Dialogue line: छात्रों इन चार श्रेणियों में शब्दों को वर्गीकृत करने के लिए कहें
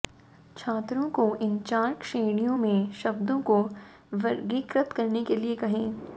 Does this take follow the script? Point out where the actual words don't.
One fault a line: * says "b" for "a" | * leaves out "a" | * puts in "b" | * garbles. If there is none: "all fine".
* puts in "को"